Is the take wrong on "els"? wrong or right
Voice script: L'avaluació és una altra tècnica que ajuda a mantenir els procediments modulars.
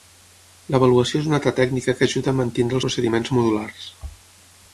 wrong